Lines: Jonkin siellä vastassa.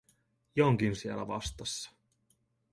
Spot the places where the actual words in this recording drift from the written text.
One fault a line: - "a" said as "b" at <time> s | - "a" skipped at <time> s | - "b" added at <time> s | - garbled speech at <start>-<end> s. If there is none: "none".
none